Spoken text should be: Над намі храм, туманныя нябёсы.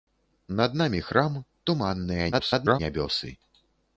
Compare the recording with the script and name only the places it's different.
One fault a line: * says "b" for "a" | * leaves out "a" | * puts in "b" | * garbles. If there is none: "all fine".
* garbles